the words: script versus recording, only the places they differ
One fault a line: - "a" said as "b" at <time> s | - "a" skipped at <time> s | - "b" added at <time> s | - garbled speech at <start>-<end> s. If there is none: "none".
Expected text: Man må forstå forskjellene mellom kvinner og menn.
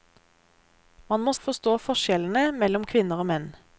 none